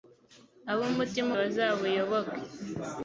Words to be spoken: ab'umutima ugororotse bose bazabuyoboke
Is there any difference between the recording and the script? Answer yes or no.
yes